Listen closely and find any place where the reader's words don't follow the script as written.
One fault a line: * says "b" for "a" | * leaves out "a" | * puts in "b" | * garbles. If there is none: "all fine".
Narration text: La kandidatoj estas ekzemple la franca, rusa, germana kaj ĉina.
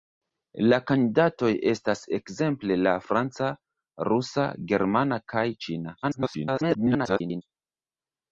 * garbles